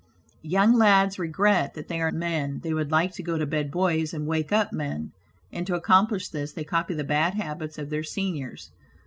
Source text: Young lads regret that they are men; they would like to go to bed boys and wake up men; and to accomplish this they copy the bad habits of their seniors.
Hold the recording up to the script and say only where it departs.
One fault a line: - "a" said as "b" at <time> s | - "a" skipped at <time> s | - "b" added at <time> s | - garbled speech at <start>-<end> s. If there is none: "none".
none